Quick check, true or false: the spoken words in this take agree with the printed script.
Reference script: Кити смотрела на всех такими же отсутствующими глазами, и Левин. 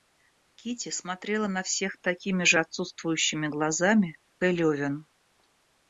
true